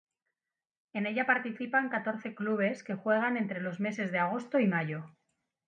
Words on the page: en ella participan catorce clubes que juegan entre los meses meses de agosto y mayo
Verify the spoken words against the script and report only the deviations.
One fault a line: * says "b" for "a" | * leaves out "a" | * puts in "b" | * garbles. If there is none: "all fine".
* leaves out "meses"